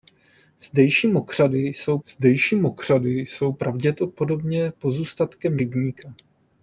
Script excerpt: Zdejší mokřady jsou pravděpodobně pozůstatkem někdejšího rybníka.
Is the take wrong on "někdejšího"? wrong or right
wrong